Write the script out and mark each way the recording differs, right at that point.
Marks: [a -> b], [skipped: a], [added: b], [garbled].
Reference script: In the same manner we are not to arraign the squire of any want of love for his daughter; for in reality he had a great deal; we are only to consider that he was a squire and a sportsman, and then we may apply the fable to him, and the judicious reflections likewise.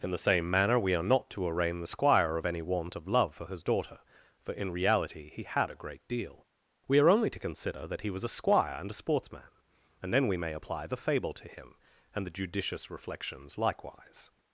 In the same manner we are not to arraign the squire of any want of love for his daughter; for in reality he had a great deal; we are only to consider that he was a squire and a sportsman, and then we may apply the fable to him, and the judicious reflections likewise.